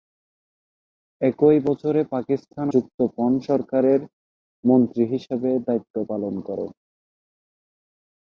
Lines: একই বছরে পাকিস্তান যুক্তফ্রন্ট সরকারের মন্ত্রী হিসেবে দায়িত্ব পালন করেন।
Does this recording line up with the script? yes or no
yes